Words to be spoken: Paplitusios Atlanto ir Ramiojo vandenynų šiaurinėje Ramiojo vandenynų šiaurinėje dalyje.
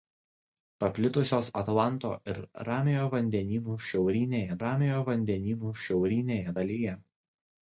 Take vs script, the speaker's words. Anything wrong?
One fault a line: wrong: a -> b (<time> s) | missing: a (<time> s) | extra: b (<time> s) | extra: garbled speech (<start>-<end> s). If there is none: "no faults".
no faults